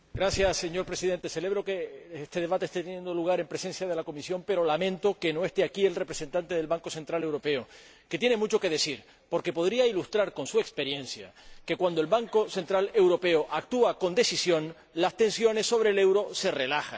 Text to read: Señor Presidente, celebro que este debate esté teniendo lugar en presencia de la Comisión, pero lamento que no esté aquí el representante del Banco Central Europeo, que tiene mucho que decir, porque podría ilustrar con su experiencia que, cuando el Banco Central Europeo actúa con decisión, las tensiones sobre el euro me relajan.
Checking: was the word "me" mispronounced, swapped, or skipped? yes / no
yes